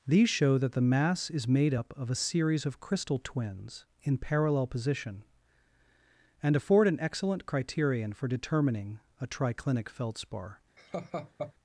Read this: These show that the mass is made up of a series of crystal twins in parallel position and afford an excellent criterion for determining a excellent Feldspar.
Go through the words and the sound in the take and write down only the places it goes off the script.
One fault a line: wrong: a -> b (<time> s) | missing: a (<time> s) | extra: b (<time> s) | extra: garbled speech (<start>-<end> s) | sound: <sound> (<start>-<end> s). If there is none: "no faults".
wrong: excellent -> triclinic (9.3 s)
sound: laugh (10.8-11.5 s)